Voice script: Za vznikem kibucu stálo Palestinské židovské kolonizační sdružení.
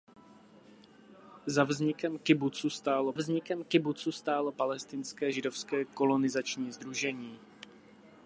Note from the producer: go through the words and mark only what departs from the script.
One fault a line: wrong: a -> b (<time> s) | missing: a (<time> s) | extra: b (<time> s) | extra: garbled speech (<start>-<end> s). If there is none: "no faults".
extra: vznikem kibucu stálo (3.1 s)